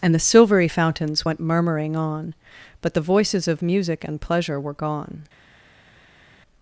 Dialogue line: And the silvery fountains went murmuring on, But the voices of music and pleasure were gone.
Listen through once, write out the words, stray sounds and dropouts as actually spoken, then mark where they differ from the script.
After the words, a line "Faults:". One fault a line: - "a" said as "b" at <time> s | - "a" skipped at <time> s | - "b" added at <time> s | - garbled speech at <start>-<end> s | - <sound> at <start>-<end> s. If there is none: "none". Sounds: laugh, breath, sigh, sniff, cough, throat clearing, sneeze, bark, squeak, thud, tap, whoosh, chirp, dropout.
And the silvery fountains went murmuring on, But the voices of music and pleasure were gone.
Faults:
none